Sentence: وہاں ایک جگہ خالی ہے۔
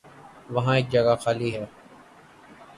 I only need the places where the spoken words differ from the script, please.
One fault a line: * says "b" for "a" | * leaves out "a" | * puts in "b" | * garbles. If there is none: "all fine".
all fine